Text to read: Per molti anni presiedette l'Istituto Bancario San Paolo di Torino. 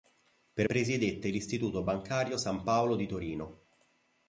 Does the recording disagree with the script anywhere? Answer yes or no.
yes